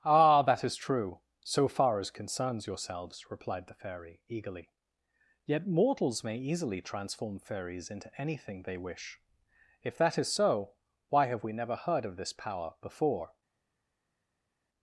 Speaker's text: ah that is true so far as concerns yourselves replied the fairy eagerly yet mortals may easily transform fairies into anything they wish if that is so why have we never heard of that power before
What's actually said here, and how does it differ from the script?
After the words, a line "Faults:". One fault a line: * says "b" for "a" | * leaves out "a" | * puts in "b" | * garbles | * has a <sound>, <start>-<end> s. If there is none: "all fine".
ah that is true so far as concerns yourselves replied the fairy eagerly yet mortals may easily transform fairies into anything they wish if that is so why have we never heard of this power before
Faults:
* says "this" for "that"